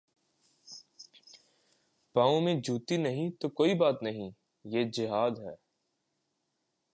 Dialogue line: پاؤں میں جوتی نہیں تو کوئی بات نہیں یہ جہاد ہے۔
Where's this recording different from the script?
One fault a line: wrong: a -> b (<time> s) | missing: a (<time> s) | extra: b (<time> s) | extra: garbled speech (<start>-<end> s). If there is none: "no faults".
no faults